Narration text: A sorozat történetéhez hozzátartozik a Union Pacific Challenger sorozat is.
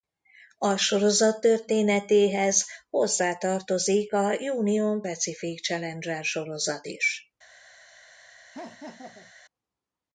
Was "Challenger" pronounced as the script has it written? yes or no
yes